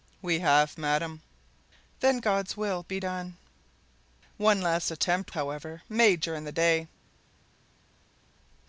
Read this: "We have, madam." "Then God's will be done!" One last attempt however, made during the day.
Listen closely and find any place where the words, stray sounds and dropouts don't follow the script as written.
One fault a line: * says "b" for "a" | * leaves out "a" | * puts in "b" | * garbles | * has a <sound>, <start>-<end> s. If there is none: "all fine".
all fine